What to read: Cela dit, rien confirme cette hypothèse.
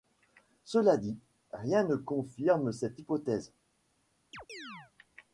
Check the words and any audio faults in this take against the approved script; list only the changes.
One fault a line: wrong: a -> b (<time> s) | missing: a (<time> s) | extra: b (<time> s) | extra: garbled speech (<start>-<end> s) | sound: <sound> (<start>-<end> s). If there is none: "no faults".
extra: ne (1.8 s)
sound: chirp (4.3-4.9 s)